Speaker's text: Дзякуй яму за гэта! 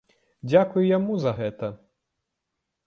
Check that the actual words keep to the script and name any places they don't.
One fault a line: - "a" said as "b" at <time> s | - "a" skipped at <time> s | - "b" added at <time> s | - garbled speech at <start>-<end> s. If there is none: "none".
none